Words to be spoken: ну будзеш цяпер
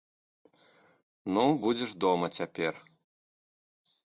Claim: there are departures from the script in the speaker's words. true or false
true